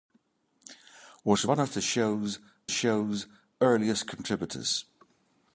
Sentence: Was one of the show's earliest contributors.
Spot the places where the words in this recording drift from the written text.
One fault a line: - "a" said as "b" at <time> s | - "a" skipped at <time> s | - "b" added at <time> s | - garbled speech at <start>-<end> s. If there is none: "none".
- "show's" added at 2.7 s